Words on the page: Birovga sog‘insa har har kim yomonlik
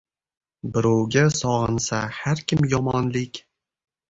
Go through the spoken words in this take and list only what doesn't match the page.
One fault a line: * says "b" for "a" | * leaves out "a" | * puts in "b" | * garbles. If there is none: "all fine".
* leaves out "har"